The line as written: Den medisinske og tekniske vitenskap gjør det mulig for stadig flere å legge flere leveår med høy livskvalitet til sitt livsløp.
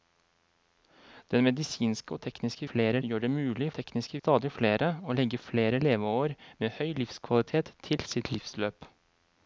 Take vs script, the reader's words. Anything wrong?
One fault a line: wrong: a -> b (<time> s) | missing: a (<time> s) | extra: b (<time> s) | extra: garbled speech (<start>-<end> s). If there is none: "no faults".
wrong: vitenskap -> flere (2.7 s)
wrong: for -> tekniske (3.8 s)